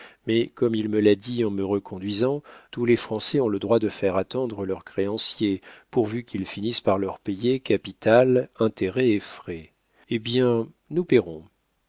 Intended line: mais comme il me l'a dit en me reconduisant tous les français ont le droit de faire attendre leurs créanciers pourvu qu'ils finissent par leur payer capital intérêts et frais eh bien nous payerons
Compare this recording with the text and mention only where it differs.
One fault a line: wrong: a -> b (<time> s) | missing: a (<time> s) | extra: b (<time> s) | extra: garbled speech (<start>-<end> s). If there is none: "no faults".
no faults